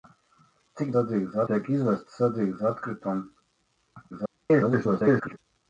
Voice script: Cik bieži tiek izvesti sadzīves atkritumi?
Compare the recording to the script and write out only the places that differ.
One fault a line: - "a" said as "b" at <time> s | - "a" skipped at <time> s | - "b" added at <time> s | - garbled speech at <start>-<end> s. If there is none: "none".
- "bieži" said as "sadzīves" at 0.9 s
- garbled speech at 4.1-5.4 s